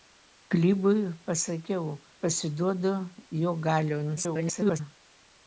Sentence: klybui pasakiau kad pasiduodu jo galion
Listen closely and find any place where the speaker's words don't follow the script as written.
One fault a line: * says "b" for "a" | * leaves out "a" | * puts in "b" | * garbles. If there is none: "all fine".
* leaves out "kad"
* garbles